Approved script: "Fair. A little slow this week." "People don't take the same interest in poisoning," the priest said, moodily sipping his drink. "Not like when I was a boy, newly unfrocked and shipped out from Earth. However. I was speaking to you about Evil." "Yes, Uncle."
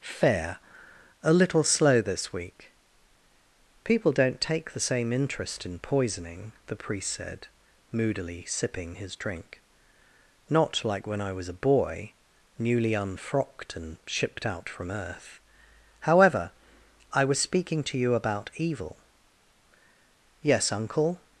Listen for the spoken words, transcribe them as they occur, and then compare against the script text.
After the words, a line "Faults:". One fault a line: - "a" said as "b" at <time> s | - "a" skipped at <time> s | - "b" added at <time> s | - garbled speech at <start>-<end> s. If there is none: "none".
"Fair. A little slow this week." "People don't take the same interest in poisoning," the priest said, moodily sipping his drink. "Not like when I was a boy, newly unfrocked and shipped out from Earth. However. I was speaking to you about Evil." "Yes, Uncle."
Faults:
none